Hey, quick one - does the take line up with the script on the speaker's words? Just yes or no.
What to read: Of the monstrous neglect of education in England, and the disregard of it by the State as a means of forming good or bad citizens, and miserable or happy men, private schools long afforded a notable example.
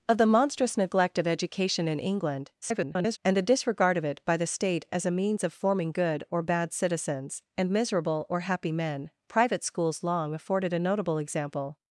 no